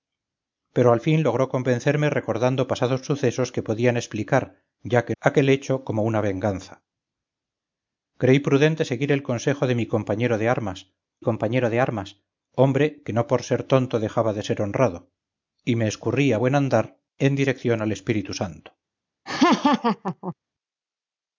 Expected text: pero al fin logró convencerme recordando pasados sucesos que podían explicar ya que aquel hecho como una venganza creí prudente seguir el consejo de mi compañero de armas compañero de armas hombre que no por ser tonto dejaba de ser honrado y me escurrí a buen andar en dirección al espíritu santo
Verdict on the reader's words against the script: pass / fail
pass